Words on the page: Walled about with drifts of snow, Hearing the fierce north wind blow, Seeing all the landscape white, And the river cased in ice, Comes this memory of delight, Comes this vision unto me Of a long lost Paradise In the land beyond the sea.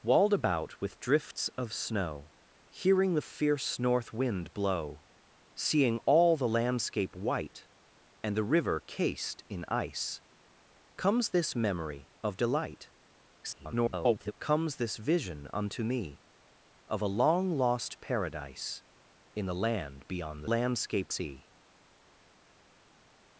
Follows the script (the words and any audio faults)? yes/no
no